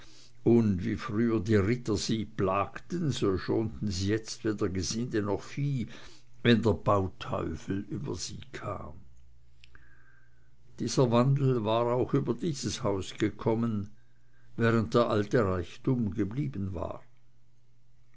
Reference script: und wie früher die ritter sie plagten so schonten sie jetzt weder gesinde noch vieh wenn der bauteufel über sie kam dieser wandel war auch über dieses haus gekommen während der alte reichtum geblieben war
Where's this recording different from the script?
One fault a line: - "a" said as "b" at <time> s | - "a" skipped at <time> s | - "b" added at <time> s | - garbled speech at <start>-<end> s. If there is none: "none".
none